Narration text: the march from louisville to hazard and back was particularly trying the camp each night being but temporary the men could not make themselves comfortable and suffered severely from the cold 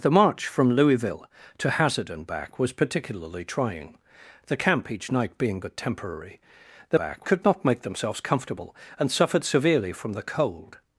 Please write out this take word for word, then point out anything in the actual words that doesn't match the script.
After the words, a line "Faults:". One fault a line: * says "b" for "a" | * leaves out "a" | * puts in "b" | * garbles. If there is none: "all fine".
the march from louisville to hazard and back was particularly trying the camp each night being but temporary the back could not make themselves comfortable and suffered severely from the cold
Faults:
* says "back" for "men"